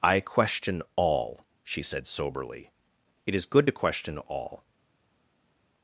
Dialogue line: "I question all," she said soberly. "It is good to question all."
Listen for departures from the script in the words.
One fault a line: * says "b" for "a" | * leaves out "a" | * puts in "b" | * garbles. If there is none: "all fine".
all fine